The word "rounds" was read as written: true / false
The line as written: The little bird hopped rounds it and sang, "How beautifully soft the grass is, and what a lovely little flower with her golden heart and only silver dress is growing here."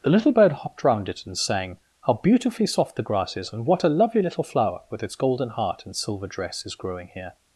false